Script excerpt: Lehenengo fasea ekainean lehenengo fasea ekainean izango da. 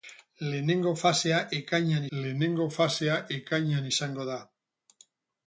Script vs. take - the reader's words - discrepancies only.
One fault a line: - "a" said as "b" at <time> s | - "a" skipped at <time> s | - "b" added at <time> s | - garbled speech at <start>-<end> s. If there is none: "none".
none